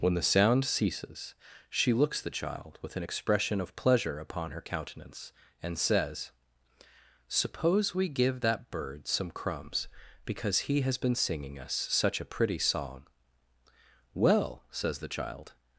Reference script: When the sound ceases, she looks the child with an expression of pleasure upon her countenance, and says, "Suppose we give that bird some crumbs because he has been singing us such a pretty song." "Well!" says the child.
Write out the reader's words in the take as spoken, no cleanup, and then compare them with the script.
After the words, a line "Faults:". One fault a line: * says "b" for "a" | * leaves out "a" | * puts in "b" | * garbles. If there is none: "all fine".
When the sound ceases, she looks the child with an expression of pleasure upon her countenance, and says, "Suppose we give that bird some crumbs because he has been singing us such a pretty song." "Well!" says the child.
Faults:
all fine